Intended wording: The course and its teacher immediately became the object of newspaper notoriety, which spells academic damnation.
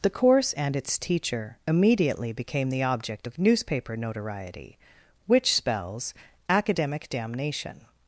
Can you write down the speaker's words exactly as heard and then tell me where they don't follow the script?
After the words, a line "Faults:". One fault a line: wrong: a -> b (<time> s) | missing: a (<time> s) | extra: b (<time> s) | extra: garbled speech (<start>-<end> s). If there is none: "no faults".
The course and its teacher immediately became the object of newspaper notoriety, which spells academic damnation.
Faults:
no faults